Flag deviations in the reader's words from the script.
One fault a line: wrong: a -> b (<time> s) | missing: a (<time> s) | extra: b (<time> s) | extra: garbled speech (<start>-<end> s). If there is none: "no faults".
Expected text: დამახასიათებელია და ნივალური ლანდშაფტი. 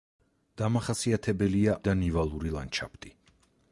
no faults